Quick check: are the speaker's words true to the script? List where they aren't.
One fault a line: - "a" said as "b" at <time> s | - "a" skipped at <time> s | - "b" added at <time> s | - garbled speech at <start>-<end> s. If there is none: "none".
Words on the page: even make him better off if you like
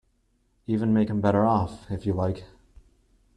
none